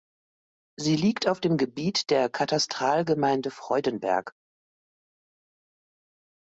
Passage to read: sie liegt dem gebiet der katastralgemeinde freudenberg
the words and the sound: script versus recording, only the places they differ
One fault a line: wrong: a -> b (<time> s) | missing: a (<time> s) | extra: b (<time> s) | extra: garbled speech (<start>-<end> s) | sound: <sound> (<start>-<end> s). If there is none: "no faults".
extra: auf (1.3 s)